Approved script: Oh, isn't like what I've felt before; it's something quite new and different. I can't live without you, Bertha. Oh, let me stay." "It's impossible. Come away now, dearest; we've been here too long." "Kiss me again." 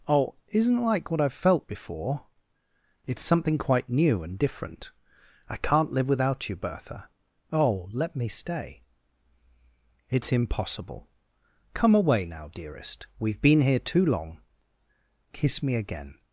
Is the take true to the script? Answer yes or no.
yes